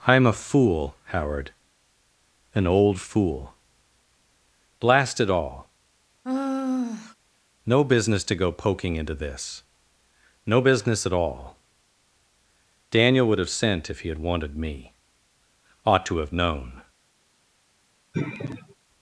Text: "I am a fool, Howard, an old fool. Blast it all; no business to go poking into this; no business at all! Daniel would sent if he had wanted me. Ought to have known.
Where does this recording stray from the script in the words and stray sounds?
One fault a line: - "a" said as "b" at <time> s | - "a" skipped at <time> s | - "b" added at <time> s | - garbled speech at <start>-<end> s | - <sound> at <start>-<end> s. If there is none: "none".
- sigh at 6.2-7.2 s
- "have" added at 13.4 s
- sigh at 18.1-18.7 s